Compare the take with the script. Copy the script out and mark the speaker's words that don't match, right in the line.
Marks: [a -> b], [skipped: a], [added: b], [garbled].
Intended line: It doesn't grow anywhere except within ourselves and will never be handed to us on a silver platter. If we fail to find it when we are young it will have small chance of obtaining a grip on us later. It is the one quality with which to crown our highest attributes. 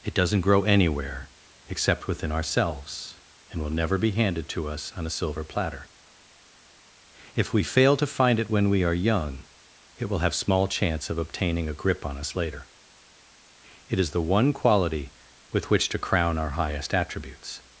It doesn't grow anywhere except within ourselves and will never be handed to us on a silver platter. If we fail to find it when we are young it will have small chance of obtaining a grip on us later. It is the one quality with which to crown our highest attributes.